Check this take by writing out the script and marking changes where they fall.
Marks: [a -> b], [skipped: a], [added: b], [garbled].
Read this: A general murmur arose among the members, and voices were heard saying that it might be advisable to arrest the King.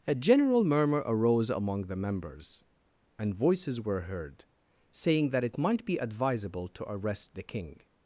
A general murmur arose among the members, and voices were heard saying that it might be advisable to arrest the King.